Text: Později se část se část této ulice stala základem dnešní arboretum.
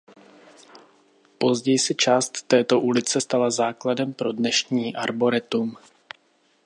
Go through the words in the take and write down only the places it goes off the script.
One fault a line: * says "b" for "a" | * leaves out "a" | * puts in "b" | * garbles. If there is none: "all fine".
* leaves out "se část"
* puts in "pro"